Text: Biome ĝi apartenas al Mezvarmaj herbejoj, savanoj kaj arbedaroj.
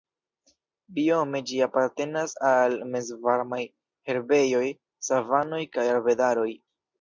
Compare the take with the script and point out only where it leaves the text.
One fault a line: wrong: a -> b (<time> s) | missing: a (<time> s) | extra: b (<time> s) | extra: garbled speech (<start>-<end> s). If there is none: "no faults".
no faults